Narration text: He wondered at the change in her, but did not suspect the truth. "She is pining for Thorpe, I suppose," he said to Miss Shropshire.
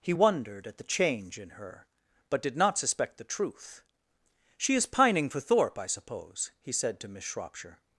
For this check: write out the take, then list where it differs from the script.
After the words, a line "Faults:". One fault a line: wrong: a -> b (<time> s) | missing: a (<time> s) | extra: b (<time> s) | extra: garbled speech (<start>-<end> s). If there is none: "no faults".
He wondered at the change in her, but did not suspect the truth. "She is pining for Thorpe, I suppose," he said to Miss Shropshire.
Faults:
no faults